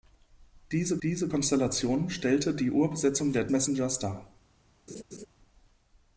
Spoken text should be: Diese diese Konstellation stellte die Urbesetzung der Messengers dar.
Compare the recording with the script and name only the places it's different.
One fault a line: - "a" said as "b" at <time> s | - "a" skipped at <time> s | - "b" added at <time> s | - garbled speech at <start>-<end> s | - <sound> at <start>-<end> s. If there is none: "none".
- laugh at 4.9-5.3 s